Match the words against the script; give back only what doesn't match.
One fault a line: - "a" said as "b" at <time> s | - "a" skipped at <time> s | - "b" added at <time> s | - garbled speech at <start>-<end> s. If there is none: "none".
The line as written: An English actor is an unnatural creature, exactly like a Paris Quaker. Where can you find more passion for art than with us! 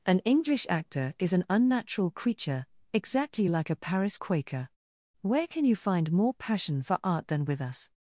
none